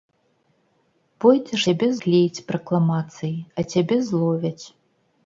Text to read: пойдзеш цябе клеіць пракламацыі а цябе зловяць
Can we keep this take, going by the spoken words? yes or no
yes